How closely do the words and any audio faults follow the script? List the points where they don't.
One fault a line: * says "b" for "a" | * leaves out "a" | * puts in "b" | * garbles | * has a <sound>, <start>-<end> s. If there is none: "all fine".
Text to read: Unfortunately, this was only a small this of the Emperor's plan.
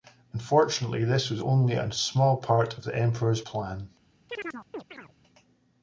* says "part" for "this"
* has a chirp, 4.3-5.1 s